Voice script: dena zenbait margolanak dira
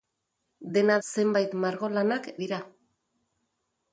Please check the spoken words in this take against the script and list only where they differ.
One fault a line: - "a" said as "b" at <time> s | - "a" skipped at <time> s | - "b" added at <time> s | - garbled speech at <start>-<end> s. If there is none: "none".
none